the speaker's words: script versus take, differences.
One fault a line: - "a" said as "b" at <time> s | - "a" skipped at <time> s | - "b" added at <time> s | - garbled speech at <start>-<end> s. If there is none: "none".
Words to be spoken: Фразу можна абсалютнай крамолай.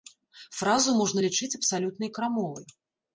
- "лічыць" added at 1.2 s